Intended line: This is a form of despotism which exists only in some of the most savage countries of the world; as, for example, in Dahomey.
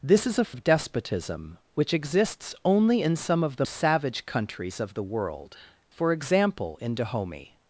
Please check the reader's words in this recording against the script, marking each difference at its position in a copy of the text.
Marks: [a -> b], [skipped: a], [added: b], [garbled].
This is a [skipped: form] of despotism which exists only in some of the [skipped: most] savage countries of the world; [skipped: as,] for example, in Dahomey.